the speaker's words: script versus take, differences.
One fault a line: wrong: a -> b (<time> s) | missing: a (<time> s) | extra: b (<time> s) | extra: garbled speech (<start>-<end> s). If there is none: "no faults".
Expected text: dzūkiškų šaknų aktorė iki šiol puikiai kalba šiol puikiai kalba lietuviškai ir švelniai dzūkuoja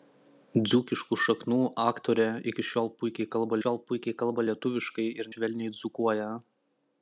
no faults